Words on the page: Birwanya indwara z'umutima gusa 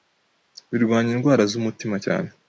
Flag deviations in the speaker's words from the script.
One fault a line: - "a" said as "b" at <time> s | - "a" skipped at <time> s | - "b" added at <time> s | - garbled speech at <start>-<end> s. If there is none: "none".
- "gusa" said as "cyane" at 2.0 s